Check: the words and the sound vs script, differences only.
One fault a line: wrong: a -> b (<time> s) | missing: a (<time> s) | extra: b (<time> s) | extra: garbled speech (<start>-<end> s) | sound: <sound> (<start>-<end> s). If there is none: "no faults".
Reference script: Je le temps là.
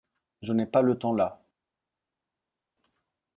extra: n'ai pas (0.5 s)